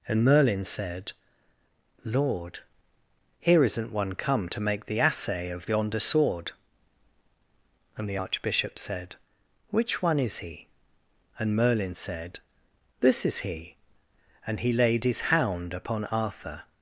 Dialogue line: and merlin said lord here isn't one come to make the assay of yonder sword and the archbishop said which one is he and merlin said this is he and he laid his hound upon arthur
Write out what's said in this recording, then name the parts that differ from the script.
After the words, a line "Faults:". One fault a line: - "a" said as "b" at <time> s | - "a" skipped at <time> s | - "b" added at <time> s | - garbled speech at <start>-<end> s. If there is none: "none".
and merlin said lord here isn't one come to make the assay of yonder sword and the archbishop said which one is he and merlin said this is he and he laid his hound upon arthur
Faults:
none